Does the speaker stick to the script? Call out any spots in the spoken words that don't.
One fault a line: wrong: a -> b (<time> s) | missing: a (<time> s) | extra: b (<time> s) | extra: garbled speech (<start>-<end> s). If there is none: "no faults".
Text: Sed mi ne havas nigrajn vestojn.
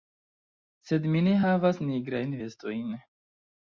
no faults